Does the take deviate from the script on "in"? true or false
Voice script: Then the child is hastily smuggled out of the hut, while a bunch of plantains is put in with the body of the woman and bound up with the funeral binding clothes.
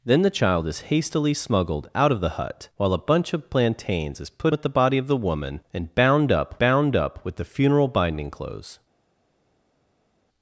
true